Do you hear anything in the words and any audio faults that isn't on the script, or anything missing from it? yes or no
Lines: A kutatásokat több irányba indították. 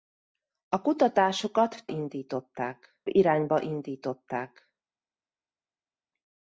yes